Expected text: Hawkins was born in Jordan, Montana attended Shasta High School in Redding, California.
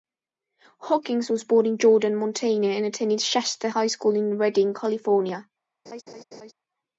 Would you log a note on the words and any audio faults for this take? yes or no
yes